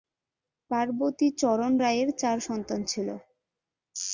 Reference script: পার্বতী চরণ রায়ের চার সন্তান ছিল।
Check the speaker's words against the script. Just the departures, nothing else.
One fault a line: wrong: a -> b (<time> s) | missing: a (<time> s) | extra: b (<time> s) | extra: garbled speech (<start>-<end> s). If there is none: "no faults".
no faults